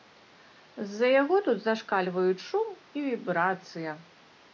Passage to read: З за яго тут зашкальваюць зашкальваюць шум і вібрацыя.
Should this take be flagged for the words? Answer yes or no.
yes